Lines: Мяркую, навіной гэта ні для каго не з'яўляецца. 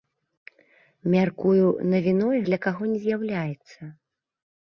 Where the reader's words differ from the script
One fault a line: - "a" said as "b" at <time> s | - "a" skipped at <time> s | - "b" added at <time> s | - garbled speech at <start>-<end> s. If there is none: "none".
- "гэта ні" skipped at 2.4 s